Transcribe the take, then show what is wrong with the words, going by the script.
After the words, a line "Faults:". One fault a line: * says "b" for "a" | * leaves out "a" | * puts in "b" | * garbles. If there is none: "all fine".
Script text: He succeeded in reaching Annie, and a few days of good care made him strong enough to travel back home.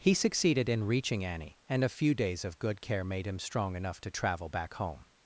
He succeeded in reaching Annie, and a few days of good care made him strong enough to travel back home.
Faults:
all fine